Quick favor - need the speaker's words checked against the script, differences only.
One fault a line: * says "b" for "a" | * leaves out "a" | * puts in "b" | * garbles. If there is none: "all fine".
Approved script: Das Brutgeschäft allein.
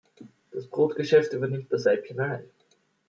* puts in "übernimmt das Weibchen"